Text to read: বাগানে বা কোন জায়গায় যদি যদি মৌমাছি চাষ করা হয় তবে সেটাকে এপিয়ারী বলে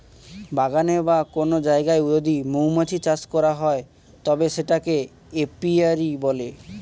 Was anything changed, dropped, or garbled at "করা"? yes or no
no